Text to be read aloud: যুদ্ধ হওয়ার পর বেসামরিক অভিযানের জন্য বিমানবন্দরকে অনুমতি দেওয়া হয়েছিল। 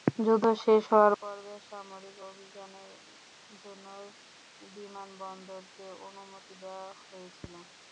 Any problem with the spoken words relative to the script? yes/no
yes